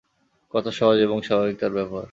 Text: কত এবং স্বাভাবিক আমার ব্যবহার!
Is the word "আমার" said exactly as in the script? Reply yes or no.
no